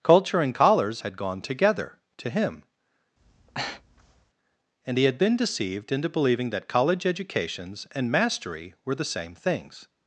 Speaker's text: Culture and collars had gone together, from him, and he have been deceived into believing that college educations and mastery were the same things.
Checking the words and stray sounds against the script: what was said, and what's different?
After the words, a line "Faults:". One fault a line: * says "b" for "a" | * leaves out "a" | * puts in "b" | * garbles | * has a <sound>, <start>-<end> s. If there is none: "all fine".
Culture and collars had gone together, to him, and he had been deceived into believing that college educations and mastery were the same things.
Faults:
* says "to" for "from"
* has a breath, 3.2-4.3 s
* says "had" for "have"